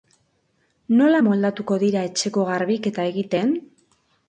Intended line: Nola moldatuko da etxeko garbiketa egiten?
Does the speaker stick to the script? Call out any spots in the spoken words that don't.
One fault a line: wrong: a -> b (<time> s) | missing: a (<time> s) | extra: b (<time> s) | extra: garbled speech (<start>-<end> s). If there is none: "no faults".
wrong: da -> dira (1.8 s)